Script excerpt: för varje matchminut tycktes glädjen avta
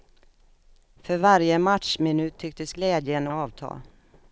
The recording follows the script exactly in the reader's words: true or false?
true